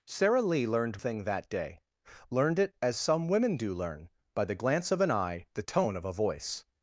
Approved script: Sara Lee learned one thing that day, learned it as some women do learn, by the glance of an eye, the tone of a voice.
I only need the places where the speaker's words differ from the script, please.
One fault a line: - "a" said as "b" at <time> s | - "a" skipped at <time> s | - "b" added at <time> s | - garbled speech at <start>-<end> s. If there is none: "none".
- "one" skipped at 1.0 s